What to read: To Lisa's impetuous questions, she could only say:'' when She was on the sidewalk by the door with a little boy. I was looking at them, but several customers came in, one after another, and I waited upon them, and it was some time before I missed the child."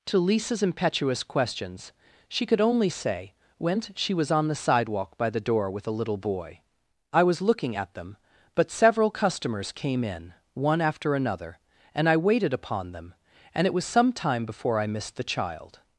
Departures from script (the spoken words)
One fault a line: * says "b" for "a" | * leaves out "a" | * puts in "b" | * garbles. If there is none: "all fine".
all fine